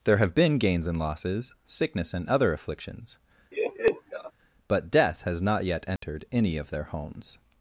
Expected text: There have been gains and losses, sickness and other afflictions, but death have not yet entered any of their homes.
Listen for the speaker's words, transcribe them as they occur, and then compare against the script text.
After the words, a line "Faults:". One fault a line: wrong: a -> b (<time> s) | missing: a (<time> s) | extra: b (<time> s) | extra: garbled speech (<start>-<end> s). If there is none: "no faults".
There have been gains and losses, sickness and other afflictions, but death has not yet entered any of their homes.
Faults:
wrong: have -> has (5.2 s)